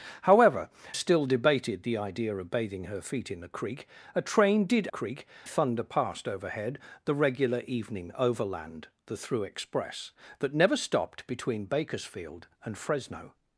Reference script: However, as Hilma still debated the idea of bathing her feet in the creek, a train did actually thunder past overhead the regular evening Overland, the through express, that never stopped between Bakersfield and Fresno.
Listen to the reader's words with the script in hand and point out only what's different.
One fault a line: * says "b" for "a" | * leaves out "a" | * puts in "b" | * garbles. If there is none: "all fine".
* leaves out "as Hilma"
* says "creek" for "actually"